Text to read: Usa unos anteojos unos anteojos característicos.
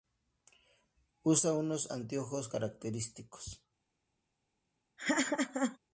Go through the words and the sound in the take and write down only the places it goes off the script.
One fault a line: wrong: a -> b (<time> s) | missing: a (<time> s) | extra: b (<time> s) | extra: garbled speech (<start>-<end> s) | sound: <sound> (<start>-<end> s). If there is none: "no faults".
missing: unos anteojos (2.5 s)
sound: laugh (5.0-5.8 s)